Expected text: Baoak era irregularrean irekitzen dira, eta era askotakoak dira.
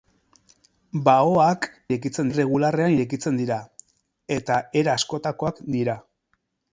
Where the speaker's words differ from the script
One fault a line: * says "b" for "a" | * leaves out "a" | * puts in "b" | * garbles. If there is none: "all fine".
* says "irekitzen" for "era"